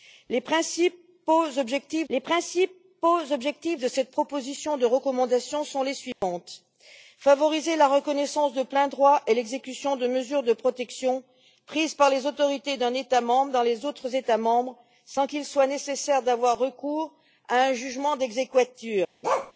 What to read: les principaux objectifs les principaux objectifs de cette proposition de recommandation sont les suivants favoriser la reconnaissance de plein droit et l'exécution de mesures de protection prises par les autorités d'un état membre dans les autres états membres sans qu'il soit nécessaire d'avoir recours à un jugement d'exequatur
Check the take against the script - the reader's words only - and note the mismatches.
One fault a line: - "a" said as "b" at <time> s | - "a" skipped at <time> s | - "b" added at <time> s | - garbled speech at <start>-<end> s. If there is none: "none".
none